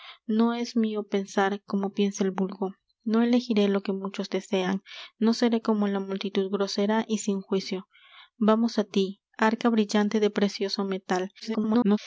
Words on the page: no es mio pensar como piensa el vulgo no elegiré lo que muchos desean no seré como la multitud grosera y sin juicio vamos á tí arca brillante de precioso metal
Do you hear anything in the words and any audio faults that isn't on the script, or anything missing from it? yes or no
yes